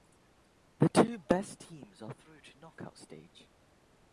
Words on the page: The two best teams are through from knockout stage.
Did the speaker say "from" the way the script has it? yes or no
no